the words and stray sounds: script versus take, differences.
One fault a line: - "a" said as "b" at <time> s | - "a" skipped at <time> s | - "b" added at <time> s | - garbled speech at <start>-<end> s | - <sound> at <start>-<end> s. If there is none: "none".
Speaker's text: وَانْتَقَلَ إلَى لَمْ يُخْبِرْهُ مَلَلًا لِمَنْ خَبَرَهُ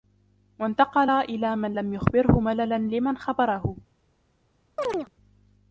- "مَنْ" added at 1.5 s
- chirp at 4.8-5.1 s